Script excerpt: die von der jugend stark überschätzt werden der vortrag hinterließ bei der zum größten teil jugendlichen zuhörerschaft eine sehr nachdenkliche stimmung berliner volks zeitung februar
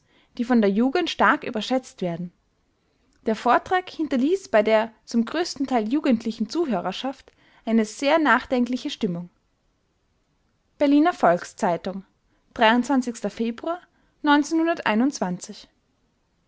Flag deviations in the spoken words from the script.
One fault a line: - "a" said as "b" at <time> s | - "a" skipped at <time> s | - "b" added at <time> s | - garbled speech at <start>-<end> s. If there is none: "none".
none